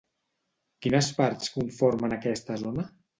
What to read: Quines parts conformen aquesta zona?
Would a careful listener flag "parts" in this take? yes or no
no